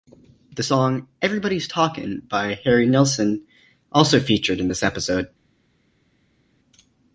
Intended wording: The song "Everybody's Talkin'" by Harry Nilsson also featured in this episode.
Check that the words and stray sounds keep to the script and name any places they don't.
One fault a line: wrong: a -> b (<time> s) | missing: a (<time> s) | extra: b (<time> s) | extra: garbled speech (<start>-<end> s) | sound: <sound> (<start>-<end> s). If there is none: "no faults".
no faults